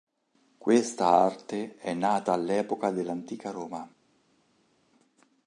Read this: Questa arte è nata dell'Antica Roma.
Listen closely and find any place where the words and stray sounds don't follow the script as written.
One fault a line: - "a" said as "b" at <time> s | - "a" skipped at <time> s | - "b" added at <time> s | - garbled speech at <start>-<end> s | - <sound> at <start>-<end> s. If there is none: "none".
- "all'epoca" added at 2.3 s